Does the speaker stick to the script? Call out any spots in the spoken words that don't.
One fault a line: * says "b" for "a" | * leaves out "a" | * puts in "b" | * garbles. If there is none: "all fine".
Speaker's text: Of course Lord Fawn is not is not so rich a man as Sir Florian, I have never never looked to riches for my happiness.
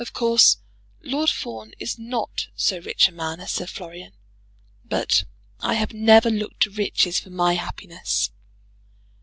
* leaves out "is not"
* puts in "but"
* leaves out "never"